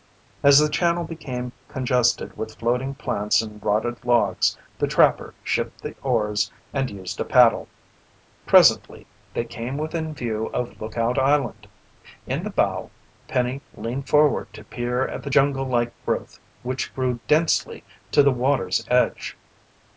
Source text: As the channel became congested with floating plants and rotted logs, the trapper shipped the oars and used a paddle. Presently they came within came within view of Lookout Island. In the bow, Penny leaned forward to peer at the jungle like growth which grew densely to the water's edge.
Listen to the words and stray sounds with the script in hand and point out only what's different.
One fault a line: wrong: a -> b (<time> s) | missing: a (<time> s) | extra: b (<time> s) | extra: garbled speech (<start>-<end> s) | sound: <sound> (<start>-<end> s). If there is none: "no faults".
missing: came within (10.2 s)